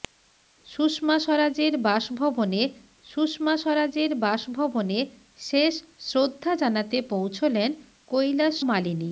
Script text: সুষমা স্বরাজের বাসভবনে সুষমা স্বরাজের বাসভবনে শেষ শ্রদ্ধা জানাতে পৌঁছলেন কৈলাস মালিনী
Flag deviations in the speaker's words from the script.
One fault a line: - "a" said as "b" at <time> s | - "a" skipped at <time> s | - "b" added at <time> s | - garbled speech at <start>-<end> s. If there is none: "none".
none